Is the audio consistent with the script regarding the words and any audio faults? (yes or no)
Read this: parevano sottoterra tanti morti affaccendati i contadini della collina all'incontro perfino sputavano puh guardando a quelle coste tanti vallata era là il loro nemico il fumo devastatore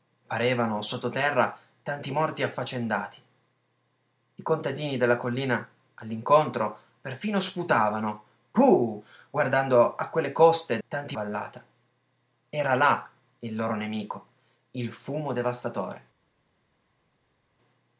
yes